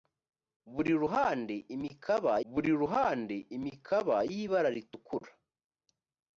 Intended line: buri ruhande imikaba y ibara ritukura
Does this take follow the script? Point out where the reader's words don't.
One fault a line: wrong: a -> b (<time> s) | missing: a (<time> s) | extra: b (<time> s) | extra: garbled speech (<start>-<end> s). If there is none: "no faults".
extra: buri ruhande imikaba (2.5 s)